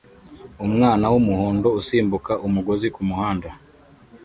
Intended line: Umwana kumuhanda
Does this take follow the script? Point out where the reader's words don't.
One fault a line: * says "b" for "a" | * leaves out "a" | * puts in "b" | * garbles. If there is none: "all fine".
* puts in "wumuhondo usimbuka umugozi"